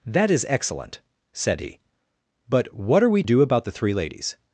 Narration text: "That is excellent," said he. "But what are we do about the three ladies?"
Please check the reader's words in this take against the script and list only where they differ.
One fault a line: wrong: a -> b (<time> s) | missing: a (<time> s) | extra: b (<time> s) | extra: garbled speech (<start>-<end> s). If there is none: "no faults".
no faults